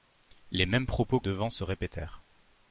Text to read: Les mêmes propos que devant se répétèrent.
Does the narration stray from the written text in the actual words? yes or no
yes